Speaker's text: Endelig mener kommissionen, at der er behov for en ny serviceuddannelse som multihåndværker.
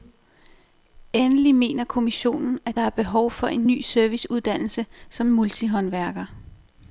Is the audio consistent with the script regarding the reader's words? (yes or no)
yes